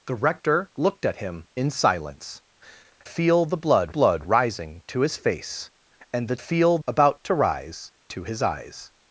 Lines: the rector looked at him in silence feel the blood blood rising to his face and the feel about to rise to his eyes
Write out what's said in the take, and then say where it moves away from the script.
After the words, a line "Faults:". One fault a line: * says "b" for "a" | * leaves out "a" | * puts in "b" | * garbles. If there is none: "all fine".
the rector looked at him in silence feel the blood blood rising to his face and the feel about to rise to his eyes
Faults:
all fine